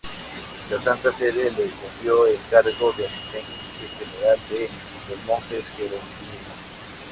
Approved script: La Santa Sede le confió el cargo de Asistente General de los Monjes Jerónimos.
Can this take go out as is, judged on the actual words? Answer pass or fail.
pass